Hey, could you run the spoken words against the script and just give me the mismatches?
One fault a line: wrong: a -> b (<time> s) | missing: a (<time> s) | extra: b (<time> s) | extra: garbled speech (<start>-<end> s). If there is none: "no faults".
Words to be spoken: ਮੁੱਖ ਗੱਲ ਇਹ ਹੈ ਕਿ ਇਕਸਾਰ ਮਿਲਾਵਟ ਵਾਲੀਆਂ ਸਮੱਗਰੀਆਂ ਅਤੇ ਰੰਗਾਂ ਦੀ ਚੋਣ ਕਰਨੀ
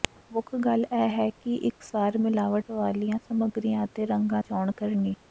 missing: ਦੀ (4.4 s)